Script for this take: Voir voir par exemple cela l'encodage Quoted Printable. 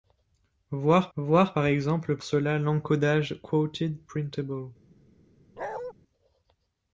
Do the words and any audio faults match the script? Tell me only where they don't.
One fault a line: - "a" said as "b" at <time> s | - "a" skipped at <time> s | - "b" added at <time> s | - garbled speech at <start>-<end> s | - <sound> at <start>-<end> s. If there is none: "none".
- bark at 5.6-5.9 s